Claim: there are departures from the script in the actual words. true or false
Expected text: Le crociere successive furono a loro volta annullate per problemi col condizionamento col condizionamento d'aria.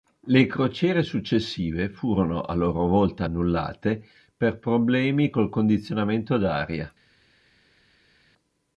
true